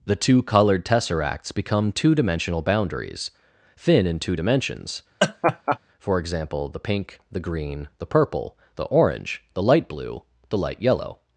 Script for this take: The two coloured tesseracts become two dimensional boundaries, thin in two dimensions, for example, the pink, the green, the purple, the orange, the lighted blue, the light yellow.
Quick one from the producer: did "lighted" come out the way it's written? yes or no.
no